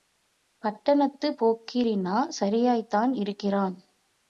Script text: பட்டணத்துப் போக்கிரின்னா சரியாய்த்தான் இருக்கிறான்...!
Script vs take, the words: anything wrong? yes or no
no